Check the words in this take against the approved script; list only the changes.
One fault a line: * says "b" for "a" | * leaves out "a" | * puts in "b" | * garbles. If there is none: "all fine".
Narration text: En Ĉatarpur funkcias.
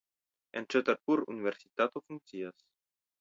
* puts in "universitato"